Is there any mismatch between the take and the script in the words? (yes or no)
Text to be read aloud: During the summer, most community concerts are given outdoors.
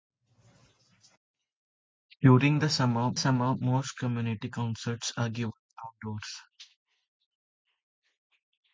yes